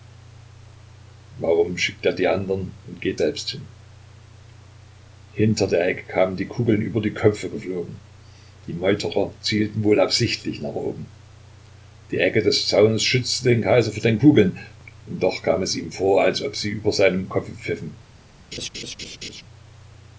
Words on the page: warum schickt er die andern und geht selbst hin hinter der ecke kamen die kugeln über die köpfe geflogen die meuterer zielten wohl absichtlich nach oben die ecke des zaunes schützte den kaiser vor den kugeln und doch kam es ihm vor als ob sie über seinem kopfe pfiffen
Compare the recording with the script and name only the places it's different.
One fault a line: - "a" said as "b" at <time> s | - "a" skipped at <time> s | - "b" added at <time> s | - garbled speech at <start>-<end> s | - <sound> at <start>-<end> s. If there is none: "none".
- laugh at 18.5-19.4 s